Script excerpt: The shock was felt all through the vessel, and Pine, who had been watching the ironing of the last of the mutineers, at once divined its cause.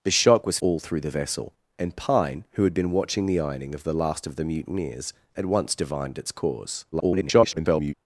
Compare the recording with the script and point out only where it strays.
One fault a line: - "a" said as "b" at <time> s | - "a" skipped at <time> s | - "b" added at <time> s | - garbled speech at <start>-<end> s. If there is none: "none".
- "felt" skipped at 0.6 s
- garbled speech at 6.9-7.9 s